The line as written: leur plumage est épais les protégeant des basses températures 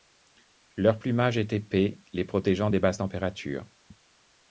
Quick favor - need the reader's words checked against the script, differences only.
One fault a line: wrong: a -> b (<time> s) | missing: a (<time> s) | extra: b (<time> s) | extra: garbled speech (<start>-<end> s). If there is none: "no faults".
no faults